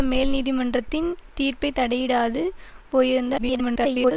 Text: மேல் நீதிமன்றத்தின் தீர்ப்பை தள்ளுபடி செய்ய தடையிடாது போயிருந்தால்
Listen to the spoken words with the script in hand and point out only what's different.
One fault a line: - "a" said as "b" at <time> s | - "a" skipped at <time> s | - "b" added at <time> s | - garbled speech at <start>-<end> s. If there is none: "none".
- "தள்ளுபடி செய்ய" skipped at 1.7 s
- garbled speech at 3.4-4.1 s